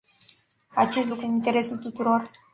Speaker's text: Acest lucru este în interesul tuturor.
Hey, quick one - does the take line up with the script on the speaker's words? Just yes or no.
no